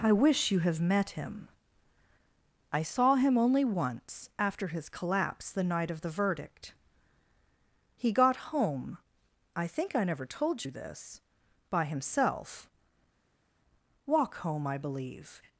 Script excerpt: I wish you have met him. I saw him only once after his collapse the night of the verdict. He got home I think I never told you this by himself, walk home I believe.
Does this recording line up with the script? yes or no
yes